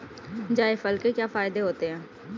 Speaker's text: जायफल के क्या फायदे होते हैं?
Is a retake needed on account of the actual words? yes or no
no